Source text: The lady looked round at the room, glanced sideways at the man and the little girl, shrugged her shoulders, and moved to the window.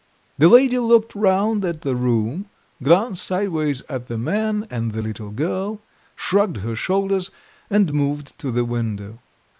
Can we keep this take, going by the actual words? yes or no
yes